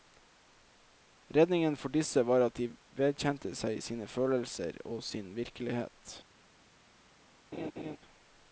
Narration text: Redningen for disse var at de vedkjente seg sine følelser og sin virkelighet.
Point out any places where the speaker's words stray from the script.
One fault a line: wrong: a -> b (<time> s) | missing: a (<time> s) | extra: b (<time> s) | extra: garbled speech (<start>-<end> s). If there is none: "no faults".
no faults